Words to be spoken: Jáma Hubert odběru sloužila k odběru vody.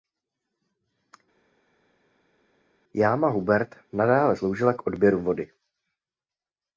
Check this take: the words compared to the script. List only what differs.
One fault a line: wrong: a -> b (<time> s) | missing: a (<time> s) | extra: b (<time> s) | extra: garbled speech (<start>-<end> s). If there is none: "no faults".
wrong: odběru -> nadále (3.9 s)